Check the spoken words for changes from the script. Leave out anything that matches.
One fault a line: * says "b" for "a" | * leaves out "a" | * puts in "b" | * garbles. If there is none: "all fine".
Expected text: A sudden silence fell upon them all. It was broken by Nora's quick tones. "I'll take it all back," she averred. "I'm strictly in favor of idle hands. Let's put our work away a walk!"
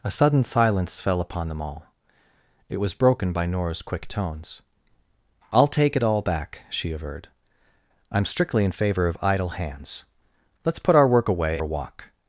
all fine